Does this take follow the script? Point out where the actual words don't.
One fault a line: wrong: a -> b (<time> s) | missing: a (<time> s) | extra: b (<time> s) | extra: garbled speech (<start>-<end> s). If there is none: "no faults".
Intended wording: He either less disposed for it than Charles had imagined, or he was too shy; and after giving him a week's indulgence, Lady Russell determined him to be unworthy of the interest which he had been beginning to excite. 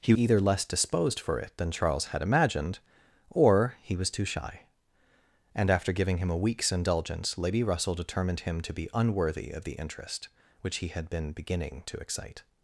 no faults